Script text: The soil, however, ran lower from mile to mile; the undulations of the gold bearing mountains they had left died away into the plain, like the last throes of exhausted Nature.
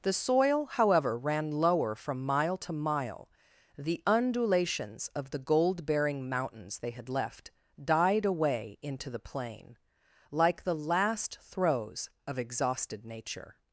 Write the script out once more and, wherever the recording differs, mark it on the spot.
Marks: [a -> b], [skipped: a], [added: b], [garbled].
The soil, however, ran lower from mile to mile; the undulations of the gold bearing mountains they had left died away into the plain, like the last throes of exhausted Nature.